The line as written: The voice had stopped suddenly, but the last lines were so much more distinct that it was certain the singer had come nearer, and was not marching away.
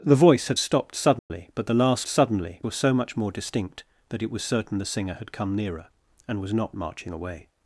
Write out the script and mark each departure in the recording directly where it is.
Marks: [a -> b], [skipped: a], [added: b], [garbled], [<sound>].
The voice had stopped suddenly, [dropout] but the last [lines -> suddenly] were so much more distinct that it was certain the singer had come nearer, and was not marching away.